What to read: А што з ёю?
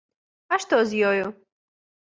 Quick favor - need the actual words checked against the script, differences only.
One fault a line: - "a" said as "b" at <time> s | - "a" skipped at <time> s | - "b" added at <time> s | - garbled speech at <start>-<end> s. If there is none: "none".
none